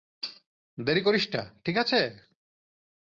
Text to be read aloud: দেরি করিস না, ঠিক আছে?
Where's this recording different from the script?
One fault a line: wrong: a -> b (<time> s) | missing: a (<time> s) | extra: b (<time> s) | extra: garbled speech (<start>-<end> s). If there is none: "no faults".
no faults